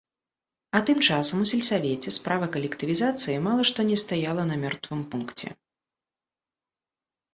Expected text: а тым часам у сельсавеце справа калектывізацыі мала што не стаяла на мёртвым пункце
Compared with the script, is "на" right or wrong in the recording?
right